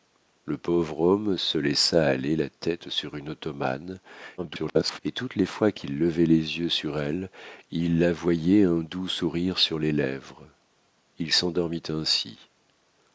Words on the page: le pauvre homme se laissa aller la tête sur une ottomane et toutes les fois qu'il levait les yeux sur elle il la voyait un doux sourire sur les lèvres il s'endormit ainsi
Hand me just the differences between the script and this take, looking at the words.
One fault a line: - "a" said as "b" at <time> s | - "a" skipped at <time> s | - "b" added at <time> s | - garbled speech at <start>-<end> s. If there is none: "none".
- garbled speech at 4.4-5.0 s